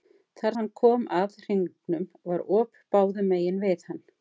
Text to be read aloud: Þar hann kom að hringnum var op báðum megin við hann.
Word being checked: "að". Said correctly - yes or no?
yes